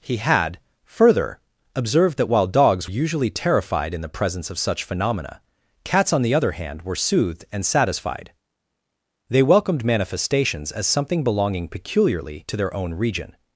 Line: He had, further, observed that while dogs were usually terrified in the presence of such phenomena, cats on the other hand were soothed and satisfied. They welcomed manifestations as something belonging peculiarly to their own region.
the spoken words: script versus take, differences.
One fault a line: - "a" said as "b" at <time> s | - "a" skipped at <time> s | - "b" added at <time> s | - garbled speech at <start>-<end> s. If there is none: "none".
- "were" skipped at 2.9 s